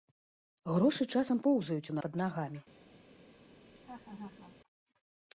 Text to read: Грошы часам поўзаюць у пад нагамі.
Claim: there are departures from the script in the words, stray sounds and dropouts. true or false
true